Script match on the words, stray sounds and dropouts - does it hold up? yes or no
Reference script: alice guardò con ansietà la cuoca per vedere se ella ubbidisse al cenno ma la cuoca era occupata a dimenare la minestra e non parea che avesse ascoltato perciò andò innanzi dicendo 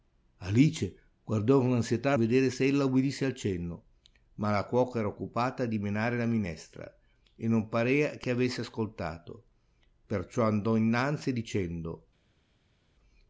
no